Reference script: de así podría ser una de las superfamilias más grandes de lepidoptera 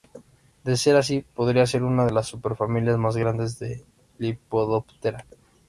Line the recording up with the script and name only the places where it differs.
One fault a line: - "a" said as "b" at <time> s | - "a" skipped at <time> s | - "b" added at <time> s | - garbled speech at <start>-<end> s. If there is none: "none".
- "ser" added at 0.8 s